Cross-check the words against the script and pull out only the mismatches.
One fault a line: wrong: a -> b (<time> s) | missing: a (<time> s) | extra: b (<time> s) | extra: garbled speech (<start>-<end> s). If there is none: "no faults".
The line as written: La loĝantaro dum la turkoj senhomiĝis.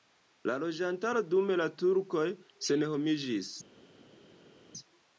no faults